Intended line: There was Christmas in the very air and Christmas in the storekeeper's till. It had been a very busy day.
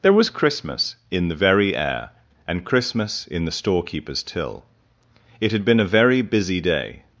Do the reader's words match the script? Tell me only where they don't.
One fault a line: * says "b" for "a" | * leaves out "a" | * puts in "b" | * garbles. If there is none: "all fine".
all fine